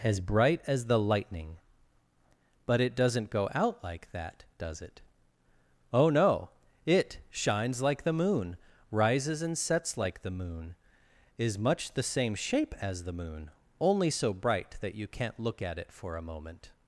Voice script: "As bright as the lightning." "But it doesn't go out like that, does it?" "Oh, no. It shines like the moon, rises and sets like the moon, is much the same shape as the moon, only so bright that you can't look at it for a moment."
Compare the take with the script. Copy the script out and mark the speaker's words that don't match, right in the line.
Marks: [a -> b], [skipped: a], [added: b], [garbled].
"As bright as the lightning." "But it doesn't go out like that, does it?" "Oh, no. It shines like the moon, rises and sets like the moon, is much the same shape as the moon, only so bright that you can't look at it for a moment."